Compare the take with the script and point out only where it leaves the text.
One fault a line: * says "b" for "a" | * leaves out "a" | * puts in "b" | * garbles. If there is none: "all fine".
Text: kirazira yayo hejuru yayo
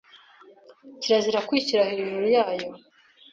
* says "kwishyira" for "yayo"